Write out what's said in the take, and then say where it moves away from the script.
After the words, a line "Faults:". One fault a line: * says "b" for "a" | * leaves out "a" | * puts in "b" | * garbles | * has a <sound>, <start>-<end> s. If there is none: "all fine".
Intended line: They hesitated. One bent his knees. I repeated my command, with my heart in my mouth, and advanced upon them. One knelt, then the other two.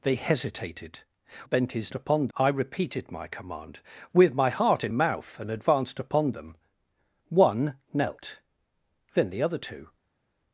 They hesitated. Bent his upon. I repeated my command, with my heart in mouth, and advanced upon them. One knelt, then the other two.
Faults:
* leaves out "One"
* says "upon" for "knees"
* leaves out "my"